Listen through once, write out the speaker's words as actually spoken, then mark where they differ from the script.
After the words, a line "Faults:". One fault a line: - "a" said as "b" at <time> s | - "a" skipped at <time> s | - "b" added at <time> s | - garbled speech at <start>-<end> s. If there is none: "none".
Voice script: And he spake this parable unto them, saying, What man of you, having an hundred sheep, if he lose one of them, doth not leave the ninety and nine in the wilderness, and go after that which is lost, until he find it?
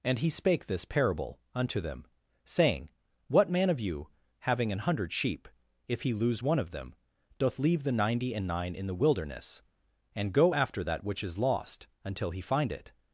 And he spake this parable unto them, saying, What man of you, having an hundred sheep, if he lose one of them, doth leave the ninety and nine in the wilderness, and go after that which is lost, until he find it?
Faults:
- "not" skipped at 7.6 s